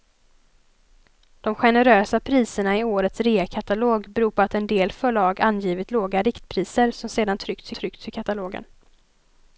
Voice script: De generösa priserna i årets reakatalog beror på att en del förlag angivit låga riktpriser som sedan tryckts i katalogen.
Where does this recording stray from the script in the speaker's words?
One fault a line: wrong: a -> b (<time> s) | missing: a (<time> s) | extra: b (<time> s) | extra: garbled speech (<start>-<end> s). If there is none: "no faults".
extra: tryckts (7.7 s)